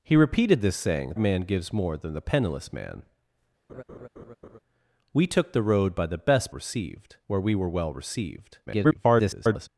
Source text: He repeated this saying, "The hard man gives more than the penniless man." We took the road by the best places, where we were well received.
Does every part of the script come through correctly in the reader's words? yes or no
no